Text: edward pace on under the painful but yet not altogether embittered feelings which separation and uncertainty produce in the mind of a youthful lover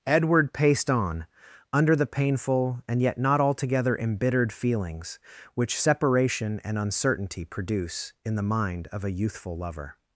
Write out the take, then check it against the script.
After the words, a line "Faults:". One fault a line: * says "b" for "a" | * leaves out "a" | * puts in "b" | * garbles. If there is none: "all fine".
edward paced on under the painful and yet not altogether embittered feelings which separation and uncertainty produce in the mind of a youthful lover
Faults:
* says "paced" for "pace"
* says "and" for "but"